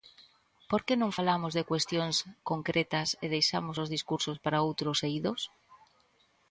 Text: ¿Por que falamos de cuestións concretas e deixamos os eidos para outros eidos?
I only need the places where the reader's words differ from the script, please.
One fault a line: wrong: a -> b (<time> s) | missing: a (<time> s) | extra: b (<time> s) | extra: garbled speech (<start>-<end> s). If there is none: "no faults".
extra: non (1.0 s)
wrong: eidos -> discursos (4.0 s)